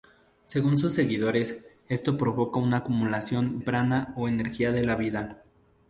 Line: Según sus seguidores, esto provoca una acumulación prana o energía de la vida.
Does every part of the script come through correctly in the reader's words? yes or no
yes